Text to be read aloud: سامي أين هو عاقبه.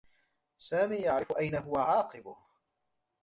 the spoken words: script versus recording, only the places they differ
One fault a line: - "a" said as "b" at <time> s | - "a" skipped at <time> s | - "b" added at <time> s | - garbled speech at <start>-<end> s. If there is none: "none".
- "يعرف" added at 0.9 s